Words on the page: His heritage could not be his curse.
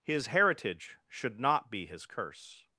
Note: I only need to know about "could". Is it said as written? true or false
false